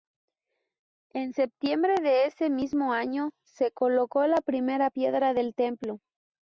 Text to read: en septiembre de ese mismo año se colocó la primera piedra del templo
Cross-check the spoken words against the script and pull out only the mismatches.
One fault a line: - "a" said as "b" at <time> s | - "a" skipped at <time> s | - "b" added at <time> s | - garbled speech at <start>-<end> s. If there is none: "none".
none